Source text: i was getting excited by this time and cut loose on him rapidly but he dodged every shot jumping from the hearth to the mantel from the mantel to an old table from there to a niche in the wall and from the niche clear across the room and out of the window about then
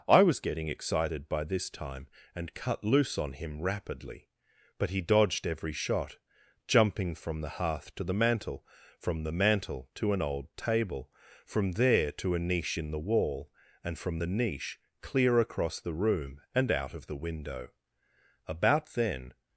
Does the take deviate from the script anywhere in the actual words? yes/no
no